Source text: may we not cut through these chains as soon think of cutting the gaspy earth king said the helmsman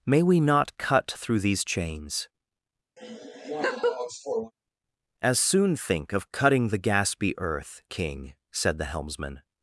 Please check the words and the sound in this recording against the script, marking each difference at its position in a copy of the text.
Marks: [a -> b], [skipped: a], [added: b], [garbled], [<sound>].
may we not cut through these chains [laugh] as soon think of cutting the gaspy earth king said the helmsman